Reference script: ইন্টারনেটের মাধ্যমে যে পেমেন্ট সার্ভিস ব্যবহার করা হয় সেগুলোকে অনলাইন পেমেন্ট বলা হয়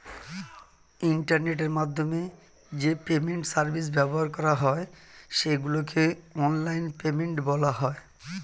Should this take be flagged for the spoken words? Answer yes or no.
no